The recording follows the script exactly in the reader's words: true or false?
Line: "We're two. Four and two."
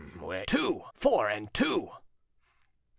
true